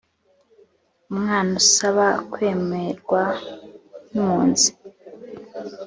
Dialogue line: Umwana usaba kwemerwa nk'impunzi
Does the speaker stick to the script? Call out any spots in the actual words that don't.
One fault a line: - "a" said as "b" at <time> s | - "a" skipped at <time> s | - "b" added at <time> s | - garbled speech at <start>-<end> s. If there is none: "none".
none